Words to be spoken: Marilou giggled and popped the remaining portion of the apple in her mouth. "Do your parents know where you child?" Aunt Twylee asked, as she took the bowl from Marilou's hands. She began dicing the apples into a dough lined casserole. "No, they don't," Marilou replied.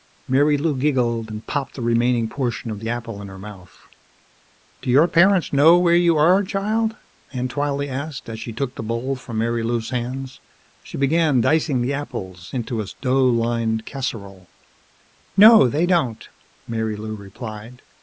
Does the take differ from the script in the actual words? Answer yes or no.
yes